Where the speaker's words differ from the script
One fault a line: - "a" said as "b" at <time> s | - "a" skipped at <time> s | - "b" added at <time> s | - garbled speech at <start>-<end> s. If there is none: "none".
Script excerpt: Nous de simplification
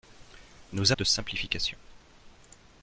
none